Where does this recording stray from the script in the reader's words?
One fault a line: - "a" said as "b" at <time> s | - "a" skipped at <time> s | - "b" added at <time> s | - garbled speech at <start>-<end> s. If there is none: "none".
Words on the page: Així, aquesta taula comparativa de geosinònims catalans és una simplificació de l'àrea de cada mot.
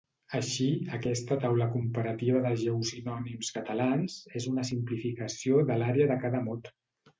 none